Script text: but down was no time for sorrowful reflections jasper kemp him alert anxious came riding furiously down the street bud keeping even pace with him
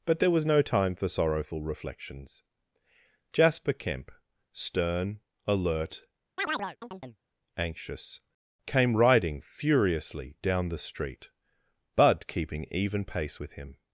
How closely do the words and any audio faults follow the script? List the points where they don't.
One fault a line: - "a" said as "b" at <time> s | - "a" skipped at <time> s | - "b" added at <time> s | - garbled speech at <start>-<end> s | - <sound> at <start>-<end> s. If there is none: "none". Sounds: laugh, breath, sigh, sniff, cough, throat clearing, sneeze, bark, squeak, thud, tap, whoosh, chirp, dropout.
- "down" said as "there" at 0.2 s
- "him" said as "stern" at 4.5 s
- chirp at 6.4-7.2 s